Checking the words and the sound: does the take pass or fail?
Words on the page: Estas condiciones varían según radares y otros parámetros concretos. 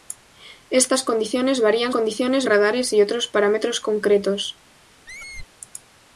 fail